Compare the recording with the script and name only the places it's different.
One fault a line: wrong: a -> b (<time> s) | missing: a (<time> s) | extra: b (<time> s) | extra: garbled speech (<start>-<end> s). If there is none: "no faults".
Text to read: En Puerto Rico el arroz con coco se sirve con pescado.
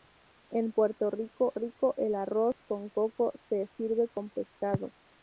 extra: Rico (1.5 s)